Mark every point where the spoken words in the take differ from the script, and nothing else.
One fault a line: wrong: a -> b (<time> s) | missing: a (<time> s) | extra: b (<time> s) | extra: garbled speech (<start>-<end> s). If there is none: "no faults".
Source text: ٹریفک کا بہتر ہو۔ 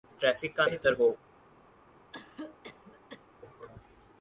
no faults